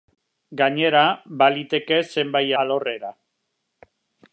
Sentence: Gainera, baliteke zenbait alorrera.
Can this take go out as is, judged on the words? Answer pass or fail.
pass